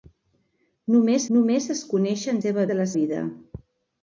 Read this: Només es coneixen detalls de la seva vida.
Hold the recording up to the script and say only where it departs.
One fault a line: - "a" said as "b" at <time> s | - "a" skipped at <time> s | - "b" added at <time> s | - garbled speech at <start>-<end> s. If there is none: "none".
- "només" added at 1.4 s
- "detalls" said as "seva" at 2.4 s
- "seva" skipped at 2.9 s